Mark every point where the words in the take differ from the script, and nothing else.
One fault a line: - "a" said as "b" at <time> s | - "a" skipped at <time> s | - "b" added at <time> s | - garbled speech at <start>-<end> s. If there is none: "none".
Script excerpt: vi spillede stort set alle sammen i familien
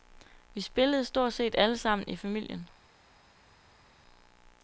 none